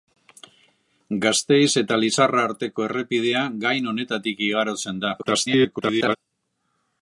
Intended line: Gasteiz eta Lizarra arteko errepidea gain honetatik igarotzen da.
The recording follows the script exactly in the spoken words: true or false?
false